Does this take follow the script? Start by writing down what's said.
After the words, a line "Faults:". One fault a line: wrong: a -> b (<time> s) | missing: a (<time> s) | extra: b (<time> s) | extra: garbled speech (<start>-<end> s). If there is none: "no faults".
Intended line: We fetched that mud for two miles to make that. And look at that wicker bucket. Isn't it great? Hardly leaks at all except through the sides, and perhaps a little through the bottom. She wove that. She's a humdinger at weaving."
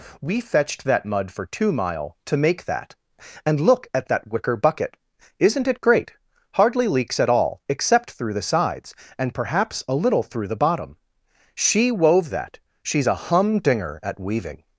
We fetched that mud for two mile to make that. And look at that wicker bucket. Isn't it great? Hardly leaks at all except through the sides, and perhaps a little through the bottom. She wove that. She's a humdinger at weaving."
Faults:
wrong: miles -> mile (1.7 s)